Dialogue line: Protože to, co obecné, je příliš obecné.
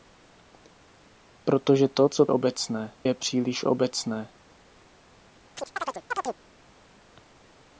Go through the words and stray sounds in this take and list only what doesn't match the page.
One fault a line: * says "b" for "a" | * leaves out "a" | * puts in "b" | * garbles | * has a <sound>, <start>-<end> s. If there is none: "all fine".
* has a chirp, 5.6-6.4 s